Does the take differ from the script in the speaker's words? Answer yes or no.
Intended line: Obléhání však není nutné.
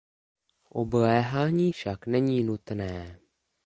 no